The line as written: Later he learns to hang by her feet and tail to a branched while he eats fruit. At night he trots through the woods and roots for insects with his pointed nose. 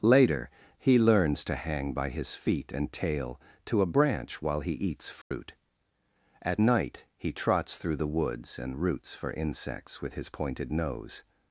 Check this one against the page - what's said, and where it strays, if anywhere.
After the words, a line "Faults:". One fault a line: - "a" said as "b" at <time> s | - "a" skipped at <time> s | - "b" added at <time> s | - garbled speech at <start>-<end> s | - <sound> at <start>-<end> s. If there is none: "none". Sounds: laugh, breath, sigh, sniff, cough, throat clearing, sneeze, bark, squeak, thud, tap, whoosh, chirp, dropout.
Later he learns to hang by his feet and tail to a branch while he eats fruit. At night he trots through the woods and roots for insects with his pointed nose.
Faults:
- "her" said as "his" at 2.1 s
- "branched" said as "branch" at 3.9 s
- dropout at 5.2-5.3 s